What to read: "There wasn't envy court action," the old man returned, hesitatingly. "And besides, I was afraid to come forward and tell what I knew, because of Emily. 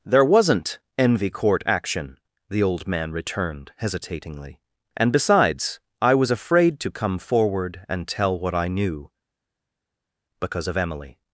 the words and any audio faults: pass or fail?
pass